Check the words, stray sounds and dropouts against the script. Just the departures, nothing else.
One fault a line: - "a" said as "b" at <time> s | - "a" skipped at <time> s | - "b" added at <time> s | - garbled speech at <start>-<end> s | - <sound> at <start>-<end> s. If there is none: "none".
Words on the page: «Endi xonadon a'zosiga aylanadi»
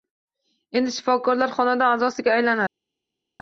- "shifokorlar" added at 0.9 s